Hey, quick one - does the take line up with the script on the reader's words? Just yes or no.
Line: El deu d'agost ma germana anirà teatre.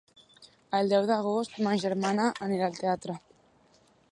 no